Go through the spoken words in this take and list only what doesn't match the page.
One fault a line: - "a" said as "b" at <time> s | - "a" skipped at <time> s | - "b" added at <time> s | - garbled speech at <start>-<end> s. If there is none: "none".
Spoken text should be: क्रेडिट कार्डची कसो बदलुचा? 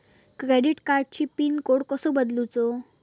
- "पिन कोड" added at 1.4 s